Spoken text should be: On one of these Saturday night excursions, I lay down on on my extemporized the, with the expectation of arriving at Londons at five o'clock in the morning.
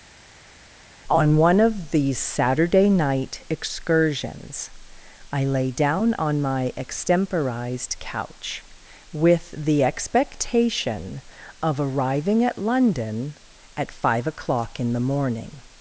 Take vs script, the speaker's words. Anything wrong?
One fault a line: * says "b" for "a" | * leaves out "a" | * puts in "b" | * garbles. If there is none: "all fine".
* leaves out "on"
* says "couch" for "the"
* says "London" for "Londons"